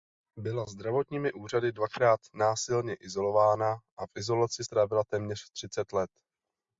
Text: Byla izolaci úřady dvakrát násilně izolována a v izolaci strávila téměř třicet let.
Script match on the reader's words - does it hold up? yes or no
no